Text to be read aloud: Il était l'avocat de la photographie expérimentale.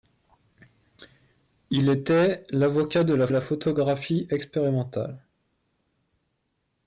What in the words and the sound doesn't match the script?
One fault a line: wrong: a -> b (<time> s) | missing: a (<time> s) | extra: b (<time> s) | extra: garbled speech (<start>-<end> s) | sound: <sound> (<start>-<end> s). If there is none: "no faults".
extra: la (3.3 s)